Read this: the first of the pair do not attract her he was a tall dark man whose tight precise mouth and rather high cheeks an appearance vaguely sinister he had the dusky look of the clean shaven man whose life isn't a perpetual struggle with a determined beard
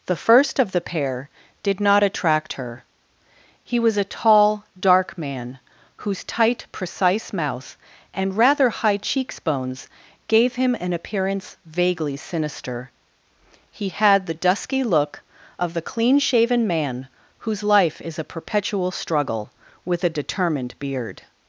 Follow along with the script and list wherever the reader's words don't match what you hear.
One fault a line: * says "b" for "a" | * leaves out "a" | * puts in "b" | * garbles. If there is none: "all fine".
* says "did" for "do"
* puts in "bones gave him"
* says "is" for "isn't"